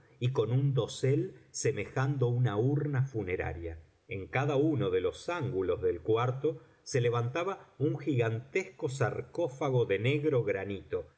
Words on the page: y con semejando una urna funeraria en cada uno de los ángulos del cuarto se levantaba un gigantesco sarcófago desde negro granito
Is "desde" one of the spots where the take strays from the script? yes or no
yes